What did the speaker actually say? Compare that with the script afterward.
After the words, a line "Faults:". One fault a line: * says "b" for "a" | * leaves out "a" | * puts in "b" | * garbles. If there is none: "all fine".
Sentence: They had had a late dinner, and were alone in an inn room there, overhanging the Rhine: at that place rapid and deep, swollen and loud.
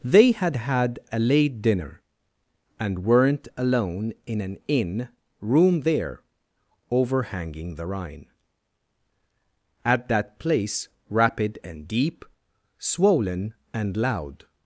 They had had a late dinner, and weren't alone in an inn room there, overhanging the Rhine: at that place rapid and deep, swollen and loud.
Faults:
* says "weren't" for "were"